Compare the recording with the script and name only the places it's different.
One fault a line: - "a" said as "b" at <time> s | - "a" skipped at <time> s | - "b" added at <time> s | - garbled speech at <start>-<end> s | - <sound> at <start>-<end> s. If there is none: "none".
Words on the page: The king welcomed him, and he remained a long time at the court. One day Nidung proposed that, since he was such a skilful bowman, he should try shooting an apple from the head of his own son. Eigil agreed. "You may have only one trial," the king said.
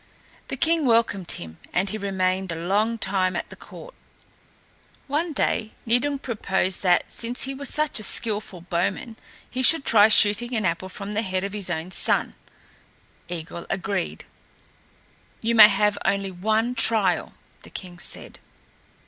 none